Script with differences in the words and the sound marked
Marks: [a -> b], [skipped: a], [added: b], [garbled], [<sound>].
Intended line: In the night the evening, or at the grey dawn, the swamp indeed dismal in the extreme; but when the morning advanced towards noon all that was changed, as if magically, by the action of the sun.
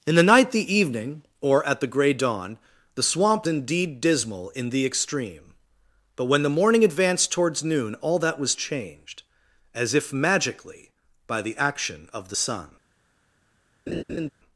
In the night the evening, or at the grey dawn, the swamp indeed dismal in the extreme; but when the morning advanced towards noon all that was changed, as if magically, by the action of the sun. [laugh]